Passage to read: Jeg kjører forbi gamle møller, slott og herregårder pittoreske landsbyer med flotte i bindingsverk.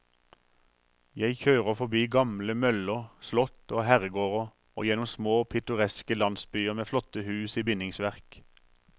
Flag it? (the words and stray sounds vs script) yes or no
yes